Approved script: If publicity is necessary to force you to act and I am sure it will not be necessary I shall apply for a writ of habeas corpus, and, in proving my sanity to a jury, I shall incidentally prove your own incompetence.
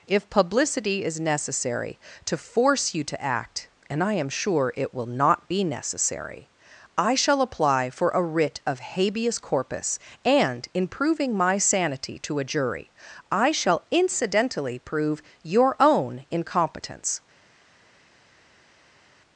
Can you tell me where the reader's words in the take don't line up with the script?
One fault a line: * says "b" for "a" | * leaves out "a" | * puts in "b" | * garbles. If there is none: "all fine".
all fine